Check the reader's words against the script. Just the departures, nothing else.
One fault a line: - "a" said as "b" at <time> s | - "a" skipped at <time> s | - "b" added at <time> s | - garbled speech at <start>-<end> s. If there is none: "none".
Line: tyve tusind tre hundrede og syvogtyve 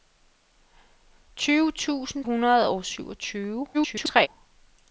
- "tre" skipped at 2.2 s
- garbled speech at 3.7-4.3 s